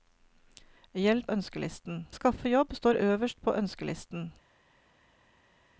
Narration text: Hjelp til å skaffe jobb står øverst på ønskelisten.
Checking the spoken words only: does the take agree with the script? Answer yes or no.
no